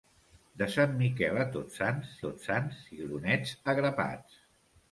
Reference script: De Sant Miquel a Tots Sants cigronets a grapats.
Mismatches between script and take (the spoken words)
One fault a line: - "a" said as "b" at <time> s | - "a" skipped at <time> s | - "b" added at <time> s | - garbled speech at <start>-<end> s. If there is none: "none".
- "Tots Sants" added at 2.3 s